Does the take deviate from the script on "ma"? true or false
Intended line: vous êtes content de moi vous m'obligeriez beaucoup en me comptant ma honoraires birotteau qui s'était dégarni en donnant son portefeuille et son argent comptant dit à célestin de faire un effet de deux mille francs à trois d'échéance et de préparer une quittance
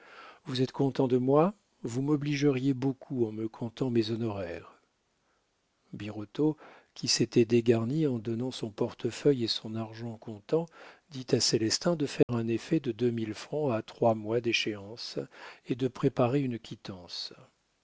true